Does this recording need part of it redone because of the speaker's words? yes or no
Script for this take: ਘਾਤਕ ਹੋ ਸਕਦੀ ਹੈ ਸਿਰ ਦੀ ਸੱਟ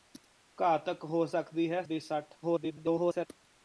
yes